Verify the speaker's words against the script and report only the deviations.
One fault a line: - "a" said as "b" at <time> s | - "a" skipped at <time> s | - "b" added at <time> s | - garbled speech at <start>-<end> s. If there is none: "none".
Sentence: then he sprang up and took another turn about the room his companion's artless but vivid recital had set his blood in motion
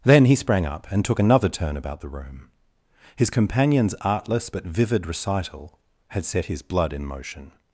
none